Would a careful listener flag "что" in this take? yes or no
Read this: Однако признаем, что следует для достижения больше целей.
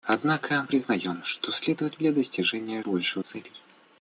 no